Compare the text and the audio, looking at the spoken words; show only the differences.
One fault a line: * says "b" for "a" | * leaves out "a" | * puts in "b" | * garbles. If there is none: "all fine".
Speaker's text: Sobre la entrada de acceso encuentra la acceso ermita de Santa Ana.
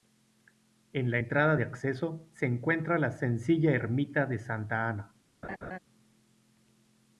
* says "En" for "Sobre"
* puts in "se"
* says "sencilla" for "acceso"